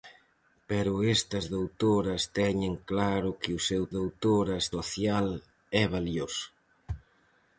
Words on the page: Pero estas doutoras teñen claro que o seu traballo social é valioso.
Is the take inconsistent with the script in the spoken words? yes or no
yes